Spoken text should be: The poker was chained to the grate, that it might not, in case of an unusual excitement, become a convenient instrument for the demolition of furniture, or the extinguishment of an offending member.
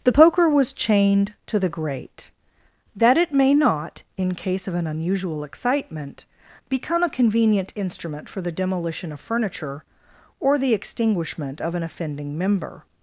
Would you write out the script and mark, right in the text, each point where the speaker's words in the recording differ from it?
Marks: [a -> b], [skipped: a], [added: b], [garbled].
The poker was chained to the grate, that it [might -> may] not, in case of an unusual excitement, become a convenient instrument for the demolition of furniture, or the extinguishment of an offending member.